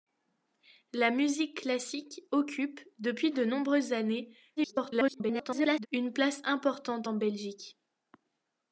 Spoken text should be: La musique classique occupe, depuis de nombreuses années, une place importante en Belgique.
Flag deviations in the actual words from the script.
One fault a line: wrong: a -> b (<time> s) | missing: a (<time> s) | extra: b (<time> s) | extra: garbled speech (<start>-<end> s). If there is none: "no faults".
extra: garbled speech (4.6-5.9 s)